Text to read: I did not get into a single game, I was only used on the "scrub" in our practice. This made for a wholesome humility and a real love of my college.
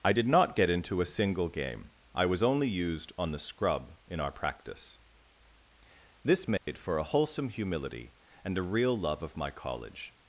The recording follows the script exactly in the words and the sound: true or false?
false